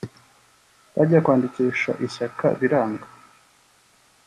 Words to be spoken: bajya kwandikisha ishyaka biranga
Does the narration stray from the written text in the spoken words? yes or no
no